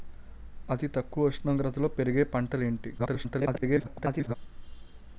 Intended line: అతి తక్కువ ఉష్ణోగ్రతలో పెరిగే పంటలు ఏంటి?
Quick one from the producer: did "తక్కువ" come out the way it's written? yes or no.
yes